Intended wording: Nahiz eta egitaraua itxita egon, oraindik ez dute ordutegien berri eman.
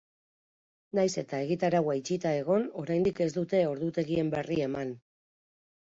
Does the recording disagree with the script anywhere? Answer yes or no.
no